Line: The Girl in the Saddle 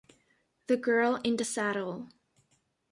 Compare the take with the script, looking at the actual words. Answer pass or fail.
pass